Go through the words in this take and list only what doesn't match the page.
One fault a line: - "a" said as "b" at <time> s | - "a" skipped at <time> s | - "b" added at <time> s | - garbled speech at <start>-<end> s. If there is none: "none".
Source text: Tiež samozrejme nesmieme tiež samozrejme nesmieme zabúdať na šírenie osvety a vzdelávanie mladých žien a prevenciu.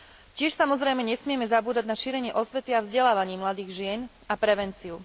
- "tiež samozrejme nesmieme" skipped at 1.5 s